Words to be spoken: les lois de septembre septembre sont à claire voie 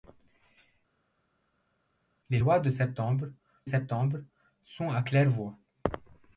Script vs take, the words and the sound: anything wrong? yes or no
no